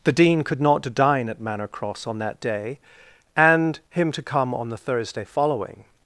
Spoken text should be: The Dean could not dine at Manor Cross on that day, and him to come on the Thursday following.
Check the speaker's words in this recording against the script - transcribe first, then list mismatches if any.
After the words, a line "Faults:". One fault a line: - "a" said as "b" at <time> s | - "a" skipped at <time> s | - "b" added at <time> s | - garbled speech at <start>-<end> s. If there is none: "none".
The Dean could not dine at Manor Cross on that day, and him to come on the Thursday following.
Faults:
none